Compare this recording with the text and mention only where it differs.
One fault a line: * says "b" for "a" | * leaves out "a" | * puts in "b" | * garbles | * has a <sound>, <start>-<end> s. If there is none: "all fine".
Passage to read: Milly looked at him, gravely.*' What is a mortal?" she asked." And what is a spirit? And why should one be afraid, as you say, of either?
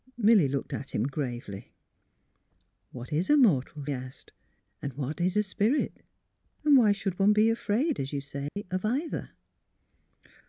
* leaves out "she"
* has a dropout, 8.5-8.6 s